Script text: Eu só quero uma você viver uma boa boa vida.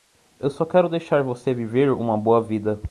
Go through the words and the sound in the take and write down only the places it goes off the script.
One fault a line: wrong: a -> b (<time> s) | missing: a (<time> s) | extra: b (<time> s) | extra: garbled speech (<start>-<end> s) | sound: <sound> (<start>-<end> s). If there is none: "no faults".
wrong: uma -> deixar (0.9 s)
missing: boa (2.4 s)